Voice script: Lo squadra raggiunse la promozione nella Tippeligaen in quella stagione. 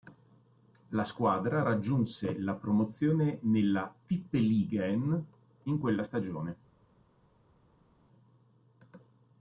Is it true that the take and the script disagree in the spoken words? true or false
true